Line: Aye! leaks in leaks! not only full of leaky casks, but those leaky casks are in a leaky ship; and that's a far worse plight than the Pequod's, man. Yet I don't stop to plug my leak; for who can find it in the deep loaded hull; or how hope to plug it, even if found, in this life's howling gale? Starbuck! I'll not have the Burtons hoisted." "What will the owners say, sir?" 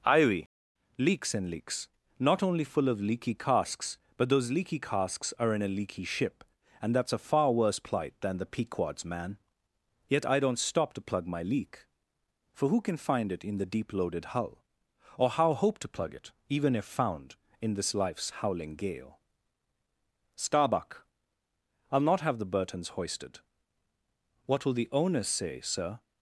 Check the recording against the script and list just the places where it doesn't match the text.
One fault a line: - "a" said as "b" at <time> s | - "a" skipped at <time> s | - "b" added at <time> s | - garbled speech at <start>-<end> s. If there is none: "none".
- "Aye" said as "Ivy" at 0.0 s
- "in" said as "and" at 1.4 s